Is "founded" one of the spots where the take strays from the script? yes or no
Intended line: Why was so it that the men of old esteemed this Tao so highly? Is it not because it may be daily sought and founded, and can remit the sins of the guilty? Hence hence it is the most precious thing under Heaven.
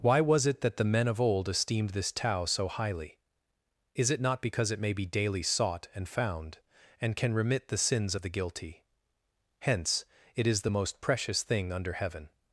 yes